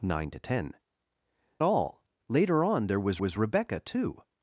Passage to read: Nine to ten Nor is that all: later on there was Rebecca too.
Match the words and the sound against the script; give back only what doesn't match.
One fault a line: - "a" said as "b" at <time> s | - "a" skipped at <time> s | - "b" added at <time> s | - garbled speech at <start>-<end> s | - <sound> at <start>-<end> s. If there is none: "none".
- "Nor is that" skipped at 0.7 s
- "was" added at 3.2 s